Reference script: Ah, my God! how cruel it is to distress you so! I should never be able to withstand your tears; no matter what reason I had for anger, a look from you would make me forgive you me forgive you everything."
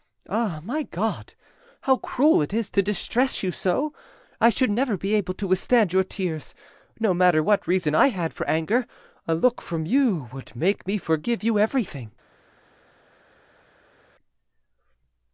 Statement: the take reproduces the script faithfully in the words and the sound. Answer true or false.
false